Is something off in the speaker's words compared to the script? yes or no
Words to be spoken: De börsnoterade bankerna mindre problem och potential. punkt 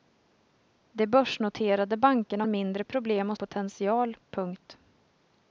no